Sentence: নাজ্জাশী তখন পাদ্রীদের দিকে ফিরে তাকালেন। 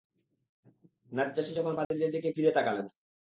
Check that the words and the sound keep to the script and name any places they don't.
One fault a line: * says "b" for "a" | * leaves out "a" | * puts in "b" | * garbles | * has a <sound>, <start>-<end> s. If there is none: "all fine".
* has a dropout, 1.8-1.9 s